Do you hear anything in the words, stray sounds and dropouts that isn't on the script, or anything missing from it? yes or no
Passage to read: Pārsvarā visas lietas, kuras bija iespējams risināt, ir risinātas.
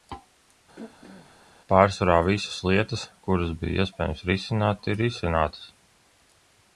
yes